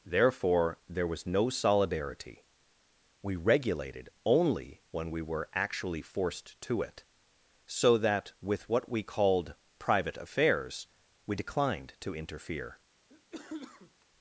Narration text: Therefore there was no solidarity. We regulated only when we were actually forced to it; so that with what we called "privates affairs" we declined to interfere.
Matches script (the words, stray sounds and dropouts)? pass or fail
fail